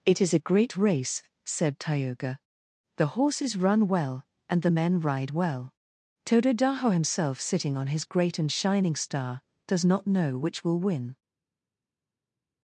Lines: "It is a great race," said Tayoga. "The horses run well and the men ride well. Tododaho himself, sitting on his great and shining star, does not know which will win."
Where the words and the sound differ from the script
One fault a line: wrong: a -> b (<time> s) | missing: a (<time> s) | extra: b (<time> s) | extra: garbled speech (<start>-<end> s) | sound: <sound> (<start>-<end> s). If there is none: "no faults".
no faults